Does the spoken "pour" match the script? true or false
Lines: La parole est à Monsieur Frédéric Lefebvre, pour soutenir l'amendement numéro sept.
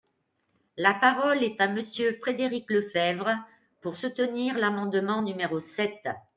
true